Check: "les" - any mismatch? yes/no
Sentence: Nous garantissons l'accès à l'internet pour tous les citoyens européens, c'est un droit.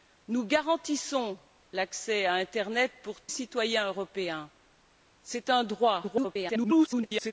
yes